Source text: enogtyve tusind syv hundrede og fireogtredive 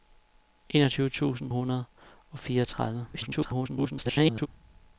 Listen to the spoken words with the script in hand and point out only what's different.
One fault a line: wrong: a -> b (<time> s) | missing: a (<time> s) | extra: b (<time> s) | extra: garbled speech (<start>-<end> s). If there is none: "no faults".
missing: syv (1.5 s)
extra: garbled speech (3.1-4.5 s)